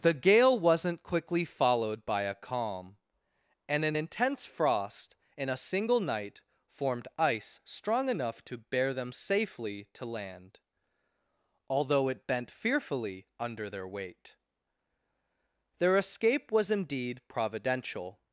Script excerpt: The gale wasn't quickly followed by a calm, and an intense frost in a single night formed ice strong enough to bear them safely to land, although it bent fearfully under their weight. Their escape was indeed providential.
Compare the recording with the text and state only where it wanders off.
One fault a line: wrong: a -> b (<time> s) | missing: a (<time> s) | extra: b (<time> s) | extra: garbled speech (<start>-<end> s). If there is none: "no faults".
no faults